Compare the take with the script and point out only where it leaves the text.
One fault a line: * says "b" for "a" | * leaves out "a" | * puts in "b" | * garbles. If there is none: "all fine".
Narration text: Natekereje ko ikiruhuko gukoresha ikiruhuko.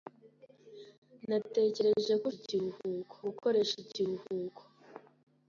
all fine